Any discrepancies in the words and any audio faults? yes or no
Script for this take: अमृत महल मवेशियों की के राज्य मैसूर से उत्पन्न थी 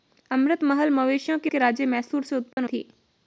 yes